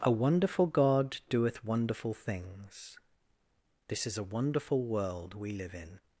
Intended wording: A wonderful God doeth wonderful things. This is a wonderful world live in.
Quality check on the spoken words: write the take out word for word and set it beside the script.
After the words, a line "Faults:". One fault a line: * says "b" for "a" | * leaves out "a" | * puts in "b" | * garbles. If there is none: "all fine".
A wonderful God doeth wonderful things. This is a wonderful world we live in.
Faults:
* puts in "we"